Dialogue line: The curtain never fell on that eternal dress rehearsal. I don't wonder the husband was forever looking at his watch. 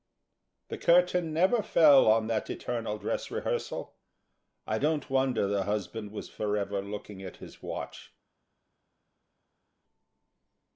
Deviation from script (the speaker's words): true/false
false